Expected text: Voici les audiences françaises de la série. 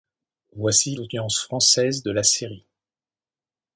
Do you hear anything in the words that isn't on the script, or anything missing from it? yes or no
yes